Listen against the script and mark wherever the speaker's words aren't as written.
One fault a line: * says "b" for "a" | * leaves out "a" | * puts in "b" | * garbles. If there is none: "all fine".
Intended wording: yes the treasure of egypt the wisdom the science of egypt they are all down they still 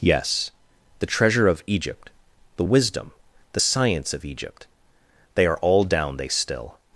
all fine